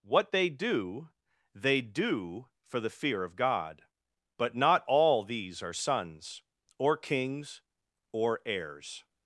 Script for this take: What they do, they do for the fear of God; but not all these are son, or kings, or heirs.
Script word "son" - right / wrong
wrong